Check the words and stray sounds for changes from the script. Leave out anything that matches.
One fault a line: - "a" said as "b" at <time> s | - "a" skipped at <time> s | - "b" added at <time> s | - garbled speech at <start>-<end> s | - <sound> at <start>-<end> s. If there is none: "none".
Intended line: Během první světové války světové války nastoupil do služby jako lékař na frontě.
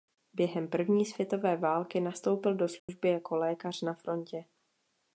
- "světové války" skipped at 2.0 s
- dropout at 2.8-2.9 s